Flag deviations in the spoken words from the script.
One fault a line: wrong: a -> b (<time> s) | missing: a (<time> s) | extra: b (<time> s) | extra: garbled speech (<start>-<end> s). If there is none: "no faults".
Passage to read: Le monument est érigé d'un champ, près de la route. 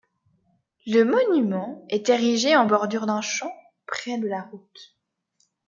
extra: en bordure (2.5 s)